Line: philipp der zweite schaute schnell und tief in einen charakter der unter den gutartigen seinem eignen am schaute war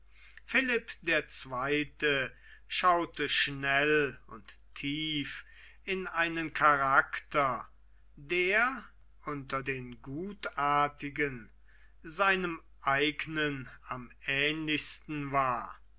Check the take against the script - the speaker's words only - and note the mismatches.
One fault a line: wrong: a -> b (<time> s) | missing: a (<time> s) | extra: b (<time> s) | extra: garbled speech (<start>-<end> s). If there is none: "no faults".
wrong: schaute -> ähnlichsten (14.2 s)